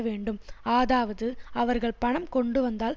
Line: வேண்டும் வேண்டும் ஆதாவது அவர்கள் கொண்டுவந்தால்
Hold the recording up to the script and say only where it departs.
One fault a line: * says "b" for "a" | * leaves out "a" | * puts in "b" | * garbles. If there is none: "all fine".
* leaves out "வேண்டும்"
* puts in "பணம்"